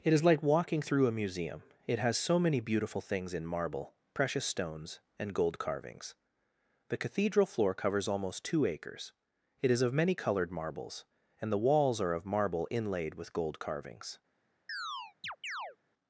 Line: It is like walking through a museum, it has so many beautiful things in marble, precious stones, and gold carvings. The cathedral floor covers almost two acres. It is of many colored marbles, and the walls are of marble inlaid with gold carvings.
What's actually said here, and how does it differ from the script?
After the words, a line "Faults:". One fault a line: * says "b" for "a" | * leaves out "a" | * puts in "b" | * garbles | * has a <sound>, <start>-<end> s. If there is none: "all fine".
It is like walking through a museum, it has so many beautiful things in marble, precious stones, and gold carvings. The cathedral floor covers almost two acres. It is of many colored marbles, and the walls are of marble inlaid with gold carvings.
Faults:
* has a chirp, 14.7-15.8 s